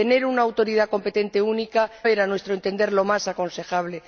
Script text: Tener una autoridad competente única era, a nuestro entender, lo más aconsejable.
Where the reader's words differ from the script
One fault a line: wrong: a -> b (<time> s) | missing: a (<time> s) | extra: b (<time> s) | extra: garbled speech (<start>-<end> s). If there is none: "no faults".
no faults